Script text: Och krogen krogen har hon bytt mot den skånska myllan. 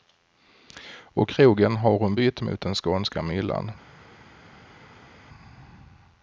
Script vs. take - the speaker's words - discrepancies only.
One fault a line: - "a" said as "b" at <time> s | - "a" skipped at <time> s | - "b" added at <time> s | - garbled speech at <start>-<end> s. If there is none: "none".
- "krogen" skipped at 1.8 s